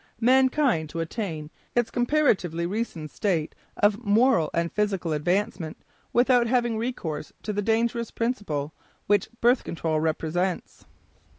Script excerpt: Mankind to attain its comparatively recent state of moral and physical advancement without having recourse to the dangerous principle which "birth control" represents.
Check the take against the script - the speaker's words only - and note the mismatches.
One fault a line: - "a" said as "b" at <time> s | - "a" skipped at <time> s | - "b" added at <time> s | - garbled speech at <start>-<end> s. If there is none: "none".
none